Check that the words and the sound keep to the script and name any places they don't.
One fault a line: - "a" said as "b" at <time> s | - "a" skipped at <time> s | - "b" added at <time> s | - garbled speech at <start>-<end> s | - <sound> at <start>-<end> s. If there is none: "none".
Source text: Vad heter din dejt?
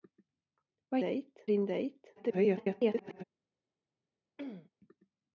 - "heter" said as "dejt" at 1.0 s
- garbled speech at 2.2-3.2 s
- throat clearing at 4.4-4.7 s